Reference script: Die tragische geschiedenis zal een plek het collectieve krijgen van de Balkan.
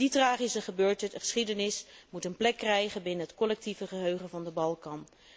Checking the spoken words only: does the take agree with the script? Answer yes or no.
no